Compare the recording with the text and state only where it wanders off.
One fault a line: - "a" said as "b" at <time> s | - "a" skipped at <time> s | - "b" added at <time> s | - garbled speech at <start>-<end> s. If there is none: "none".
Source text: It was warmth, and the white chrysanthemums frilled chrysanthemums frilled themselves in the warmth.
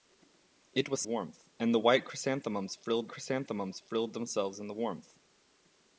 none